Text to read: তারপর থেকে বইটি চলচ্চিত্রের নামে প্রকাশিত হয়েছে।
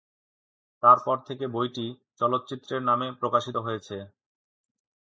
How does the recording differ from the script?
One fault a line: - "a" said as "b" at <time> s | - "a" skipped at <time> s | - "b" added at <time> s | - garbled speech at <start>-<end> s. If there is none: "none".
none